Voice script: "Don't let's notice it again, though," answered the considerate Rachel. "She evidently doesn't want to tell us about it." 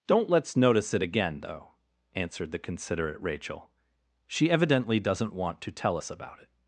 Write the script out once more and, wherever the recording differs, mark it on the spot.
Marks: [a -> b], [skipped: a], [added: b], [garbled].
"Don't let's notice it again, though," answered the considerate Rachel. "She evidently doesn't want to tell us about it."